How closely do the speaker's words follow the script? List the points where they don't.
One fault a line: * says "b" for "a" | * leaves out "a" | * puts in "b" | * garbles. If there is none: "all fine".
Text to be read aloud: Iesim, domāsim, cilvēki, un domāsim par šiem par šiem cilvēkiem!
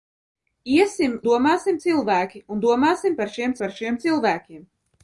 all fine